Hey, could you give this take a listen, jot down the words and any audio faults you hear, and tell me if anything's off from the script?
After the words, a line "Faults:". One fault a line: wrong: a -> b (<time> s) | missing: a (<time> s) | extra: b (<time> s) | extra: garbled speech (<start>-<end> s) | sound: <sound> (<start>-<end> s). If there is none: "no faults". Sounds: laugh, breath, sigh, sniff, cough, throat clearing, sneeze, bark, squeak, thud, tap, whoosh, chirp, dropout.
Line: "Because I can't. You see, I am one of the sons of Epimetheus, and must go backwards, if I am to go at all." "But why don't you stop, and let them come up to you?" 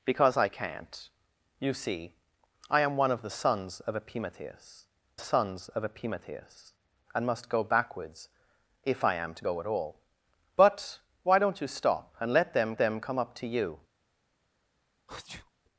"Because I can't. You see, I am one of the sons of Epimetheus sons of Epimetheus, and must go backwards, if I am to go at all." "But why don't you stop, and let them them come up to you?"
Faults:
extra: sons of Epimetheus (5.2 s)
extra: them (12.8 s)
sound: sneeze (15.1-15.5 s)